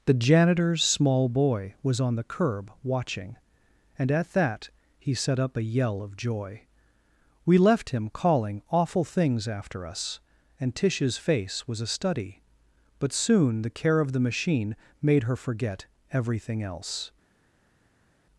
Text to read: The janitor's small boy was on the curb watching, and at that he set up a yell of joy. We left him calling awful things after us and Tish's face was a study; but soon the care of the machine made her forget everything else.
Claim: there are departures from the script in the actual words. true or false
false